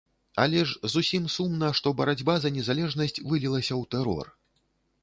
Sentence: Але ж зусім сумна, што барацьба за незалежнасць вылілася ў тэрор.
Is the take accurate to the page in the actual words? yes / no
yes